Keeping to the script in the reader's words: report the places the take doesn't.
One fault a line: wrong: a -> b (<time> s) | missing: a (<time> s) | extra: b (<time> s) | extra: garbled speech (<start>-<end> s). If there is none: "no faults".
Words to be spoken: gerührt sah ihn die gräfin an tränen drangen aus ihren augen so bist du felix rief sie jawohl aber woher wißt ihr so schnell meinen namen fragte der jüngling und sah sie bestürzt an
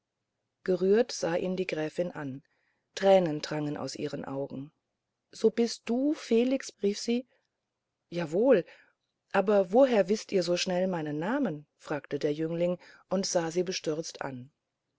no faults